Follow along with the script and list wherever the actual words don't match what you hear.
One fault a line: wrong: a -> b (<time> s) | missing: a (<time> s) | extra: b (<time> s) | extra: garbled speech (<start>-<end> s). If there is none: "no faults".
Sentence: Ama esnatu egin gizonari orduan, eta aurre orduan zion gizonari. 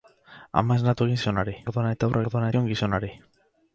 no faults